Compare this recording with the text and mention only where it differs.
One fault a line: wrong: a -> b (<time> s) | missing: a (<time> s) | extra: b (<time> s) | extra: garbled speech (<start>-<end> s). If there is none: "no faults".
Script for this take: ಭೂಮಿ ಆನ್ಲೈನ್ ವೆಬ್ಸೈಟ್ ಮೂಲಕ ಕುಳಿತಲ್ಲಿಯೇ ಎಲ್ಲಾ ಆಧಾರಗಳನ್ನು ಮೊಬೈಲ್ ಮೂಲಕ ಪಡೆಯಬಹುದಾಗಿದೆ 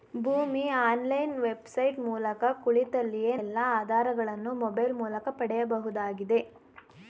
no faults